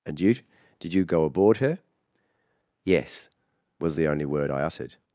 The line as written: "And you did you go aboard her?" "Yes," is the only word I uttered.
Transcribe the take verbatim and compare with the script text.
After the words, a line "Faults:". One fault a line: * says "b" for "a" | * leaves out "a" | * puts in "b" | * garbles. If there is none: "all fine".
"And you did you go aboard her?" "Yes," was the only word I uttered.
Faults:
* says "was" for "is"